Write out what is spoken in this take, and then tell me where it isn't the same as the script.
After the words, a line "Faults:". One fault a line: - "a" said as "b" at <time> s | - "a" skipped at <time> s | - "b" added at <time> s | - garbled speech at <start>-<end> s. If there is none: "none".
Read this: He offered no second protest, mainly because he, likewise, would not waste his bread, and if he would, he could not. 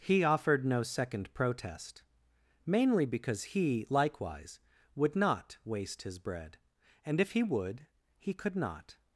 He offered no second protest, mainly because he, likewise, would not waste his bread, and if he would, he could not.
Faults:
none